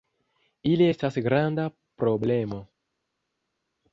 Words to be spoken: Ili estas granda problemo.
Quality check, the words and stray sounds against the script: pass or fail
pass